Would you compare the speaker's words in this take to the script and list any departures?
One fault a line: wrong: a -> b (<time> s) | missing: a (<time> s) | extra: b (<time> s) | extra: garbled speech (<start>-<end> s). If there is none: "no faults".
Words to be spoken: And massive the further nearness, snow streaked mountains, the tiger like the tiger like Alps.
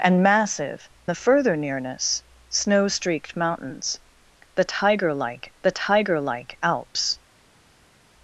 no faults